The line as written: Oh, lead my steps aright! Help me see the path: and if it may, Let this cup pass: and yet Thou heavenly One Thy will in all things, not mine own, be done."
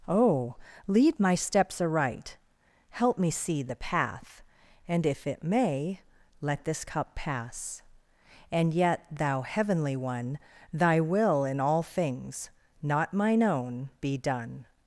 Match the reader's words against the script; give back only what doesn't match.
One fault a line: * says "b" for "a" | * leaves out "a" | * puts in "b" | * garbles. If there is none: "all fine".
all fine